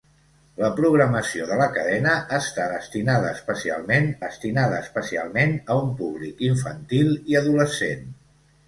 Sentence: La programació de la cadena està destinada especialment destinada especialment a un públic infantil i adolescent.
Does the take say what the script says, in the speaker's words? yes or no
yes